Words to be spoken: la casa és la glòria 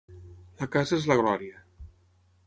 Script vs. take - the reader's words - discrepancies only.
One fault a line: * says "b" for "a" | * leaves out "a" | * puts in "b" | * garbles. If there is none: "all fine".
all fine